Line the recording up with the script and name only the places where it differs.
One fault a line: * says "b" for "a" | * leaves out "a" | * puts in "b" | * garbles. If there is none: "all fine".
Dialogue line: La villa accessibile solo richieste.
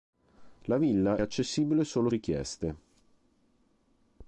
all fine